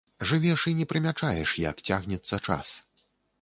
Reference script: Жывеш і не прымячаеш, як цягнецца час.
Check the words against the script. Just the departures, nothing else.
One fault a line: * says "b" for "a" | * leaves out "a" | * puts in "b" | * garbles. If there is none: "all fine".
all fine